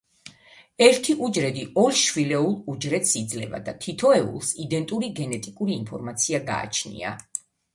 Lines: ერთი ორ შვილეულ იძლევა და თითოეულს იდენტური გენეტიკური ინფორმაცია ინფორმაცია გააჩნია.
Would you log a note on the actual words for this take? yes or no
yes